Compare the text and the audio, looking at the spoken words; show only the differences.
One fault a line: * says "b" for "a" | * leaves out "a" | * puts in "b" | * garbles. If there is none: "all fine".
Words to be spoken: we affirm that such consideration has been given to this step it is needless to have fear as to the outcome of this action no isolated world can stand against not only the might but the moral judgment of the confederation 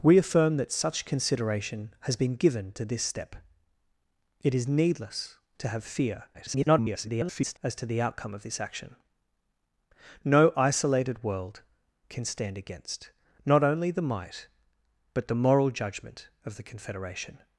* garbles